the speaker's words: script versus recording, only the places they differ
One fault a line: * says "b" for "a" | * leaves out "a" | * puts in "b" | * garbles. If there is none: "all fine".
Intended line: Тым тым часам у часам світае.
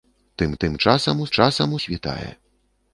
all fine